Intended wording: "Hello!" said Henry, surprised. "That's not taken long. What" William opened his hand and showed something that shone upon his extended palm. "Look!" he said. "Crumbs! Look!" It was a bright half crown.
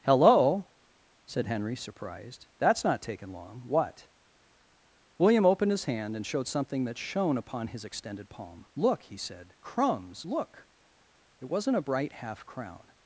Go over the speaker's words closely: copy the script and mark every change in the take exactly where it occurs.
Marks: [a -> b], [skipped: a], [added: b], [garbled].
"Hello!" said Henry, surprised. "That's not taken long. What" William opened his hand and showed something that shone upon his extended palm. "Look!" he said. "Crumbs! Look!" It [was -> wasn't] a bright half crown.